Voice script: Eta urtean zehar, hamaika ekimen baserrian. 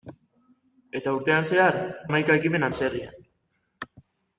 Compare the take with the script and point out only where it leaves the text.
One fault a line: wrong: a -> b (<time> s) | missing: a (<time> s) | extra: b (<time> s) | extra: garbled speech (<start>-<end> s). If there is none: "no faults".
no faults